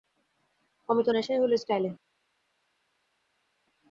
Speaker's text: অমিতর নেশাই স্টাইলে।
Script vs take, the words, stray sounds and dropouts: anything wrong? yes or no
yes